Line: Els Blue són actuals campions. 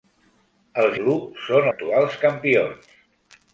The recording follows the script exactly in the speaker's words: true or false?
true